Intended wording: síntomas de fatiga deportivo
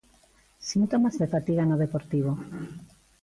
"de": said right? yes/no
yes